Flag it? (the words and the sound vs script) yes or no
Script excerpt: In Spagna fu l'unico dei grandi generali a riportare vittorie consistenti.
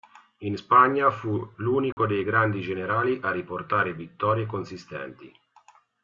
yes